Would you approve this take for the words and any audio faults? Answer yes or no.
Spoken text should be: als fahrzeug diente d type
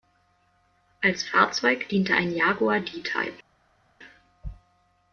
no